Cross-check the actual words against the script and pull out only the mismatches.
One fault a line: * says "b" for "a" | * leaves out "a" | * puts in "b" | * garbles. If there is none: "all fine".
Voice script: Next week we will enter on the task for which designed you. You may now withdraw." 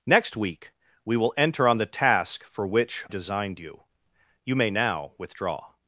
all fine